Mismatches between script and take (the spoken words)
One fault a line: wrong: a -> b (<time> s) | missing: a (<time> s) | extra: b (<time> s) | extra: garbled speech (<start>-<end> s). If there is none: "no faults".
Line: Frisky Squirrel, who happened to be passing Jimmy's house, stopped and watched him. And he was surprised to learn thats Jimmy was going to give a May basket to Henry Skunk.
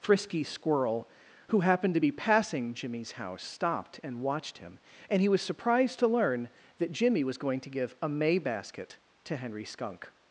wrong: thats -> that (6.8 s)